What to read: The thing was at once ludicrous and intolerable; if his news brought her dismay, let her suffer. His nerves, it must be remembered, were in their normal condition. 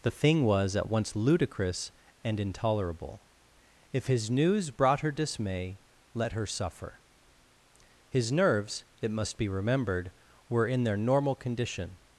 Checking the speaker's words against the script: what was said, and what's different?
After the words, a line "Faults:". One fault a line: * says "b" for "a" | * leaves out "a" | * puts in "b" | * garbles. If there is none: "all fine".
The thing was at once ludicrous and intolerable; if his news brought her dismay, let her suffer. His nerves, it must be remembered, were in their normal condition.
Faults:
all fine